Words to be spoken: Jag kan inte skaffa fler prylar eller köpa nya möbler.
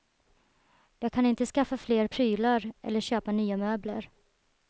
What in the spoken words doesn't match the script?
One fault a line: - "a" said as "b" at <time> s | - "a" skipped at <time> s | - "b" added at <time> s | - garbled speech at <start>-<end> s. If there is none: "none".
none